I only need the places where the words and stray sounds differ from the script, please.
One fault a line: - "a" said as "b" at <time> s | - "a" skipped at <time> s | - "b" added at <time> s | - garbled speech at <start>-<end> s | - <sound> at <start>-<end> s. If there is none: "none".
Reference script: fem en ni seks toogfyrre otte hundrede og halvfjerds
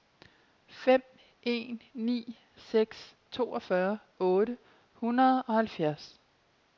none